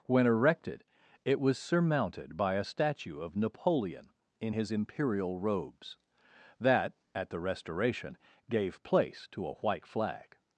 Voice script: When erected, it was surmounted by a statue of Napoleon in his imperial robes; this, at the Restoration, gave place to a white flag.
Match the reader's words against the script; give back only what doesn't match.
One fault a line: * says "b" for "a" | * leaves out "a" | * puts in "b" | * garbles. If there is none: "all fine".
* says "that" for "this"